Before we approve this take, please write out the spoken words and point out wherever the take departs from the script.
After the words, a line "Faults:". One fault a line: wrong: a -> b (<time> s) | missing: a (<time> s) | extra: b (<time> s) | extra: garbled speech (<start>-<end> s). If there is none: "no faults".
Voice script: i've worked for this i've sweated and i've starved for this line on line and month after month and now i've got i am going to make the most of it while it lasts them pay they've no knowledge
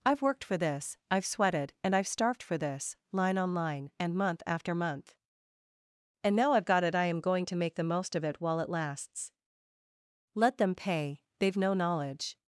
i've worked for this i've sweated and i've starved for this line on line and month after month and now i've got it i am going to make the most of it while it lasts let them pay they've no knowledge
Faults:
extra: it (6.8 s)
extra: let (10.3 s)